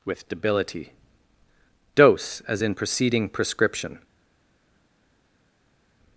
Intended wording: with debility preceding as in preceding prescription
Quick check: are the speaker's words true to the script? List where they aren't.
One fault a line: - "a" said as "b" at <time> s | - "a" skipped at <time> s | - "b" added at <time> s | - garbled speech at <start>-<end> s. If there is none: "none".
- "preceding" said as "dose" at 1.9 s